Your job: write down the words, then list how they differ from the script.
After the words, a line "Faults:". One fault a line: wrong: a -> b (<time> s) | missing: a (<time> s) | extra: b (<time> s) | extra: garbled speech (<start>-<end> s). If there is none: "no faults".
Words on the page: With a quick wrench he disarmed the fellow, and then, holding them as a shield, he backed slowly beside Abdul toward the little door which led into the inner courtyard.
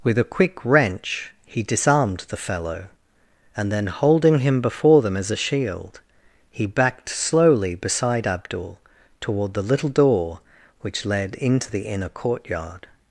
With a quick wrench he disarmed the fellow, and then, holding him before them as a shield, he backed slowly beside Abdul toward the little door which led into the inner courtyard.
Faults:
extra: him before (4.4 s)